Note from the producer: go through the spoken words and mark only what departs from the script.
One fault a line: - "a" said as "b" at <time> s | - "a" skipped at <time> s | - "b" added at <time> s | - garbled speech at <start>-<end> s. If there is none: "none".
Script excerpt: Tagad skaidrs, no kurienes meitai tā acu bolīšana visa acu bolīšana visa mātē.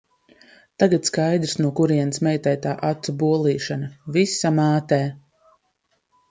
- "acu bolīšana visa" skipped at 4.5 s